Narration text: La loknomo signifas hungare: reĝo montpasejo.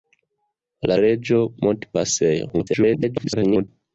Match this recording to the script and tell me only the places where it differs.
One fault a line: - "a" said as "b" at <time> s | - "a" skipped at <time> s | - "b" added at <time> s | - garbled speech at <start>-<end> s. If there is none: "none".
- "loknomo signifas hungare" skipped at 0.9 s
- garbled speech at 2.5-3.7 s